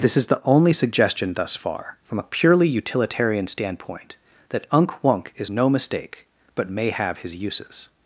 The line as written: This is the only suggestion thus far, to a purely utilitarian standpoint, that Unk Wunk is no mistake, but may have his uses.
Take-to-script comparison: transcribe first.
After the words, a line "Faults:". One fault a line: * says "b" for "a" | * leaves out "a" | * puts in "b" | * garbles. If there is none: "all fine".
This is the only suggestion thus far, from a purely utilitarian standpoint, that Unk Wunk is no mistake, but may have his uses.
Faults:
* says "from" for "to"